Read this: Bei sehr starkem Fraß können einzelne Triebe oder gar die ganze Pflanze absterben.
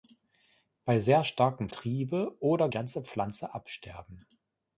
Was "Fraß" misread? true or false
true